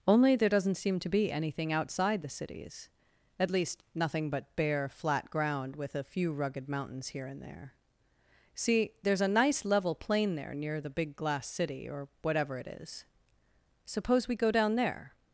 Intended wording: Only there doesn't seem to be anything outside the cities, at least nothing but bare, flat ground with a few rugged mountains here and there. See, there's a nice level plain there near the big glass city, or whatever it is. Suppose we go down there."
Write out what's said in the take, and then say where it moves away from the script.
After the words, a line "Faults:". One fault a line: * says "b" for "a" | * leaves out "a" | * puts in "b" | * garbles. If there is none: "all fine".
Only there doesn't seem to be anything outside the cities, at least nothing but bare, flat ground with a few rugged mountains here and there. See, there's a nice level plain there near the big glass city, or whatever it is. Suppose we go down there."
Faults:
all fine